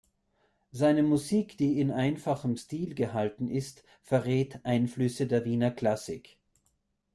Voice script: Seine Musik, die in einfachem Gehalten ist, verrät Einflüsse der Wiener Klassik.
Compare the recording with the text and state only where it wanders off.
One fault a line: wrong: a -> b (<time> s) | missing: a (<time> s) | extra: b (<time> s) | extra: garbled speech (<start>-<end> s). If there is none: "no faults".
extra: Stil (2.5 s)